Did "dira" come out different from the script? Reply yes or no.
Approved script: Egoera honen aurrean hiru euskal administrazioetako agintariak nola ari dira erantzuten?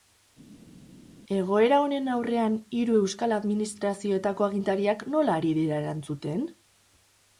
no